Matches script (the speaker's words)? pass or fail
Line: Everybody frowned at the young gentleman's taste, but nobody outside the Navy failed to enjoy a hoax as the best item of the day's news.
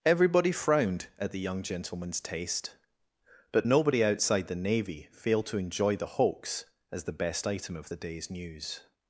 fail